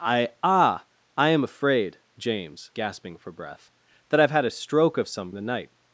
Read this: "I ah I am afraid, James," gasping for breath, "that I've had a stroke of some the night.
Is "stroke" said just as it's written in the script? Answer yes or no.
yes